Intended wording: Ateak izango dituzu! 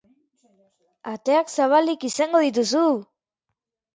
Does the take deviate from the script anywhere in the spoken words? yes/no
yes